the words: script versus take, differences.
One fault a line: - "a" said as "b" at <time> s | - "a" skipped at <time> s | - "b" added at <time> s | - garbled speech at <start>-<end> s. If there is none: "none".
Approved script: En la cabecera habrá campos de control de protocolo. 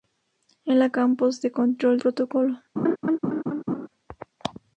- "cabecera habrá" skipped at 0.9 s
- "de" skipped at 2.0 s